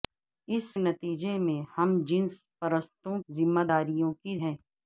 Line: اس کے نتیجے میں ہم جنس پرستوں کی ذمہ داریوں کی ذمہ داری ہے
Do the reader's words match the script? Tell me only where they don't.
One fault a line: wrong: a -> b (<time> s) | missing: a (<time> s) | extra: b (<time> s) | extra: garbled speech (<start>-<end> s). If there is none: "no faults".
missing: کے (0.7 s)
missing: کی (3.2 s)
missing: ذمہ داری (4.4 s)